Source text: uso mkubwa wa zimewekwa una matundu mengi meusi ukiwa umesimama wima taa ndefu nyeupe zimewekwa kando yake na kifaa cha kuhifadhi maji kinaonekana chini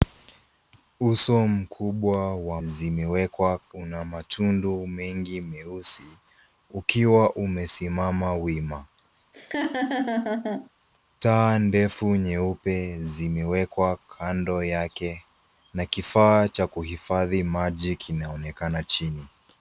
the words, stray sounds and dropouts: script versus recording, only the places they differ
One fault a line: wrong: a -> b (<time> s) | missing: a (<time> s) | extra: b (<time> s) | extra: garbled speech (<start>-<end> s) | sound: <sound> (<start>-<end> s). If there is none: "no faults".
sound: laugh (9.3-10.7 s)